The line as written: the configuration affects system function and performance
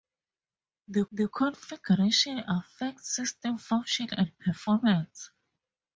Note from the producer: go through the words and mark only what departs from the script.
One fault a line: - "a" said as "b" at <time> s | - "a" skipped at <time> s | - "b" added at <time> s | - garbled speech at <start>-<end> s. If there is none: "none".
- "the" added at 1.1 s